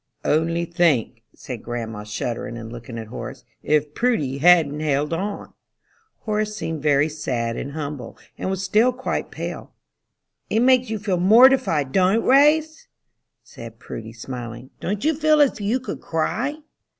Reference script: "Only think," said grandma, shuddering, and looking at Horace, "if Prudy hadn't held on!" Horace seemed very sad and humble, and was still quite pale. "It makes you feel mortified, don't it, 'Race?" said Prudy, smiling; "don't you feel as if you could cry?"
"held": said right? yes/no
yes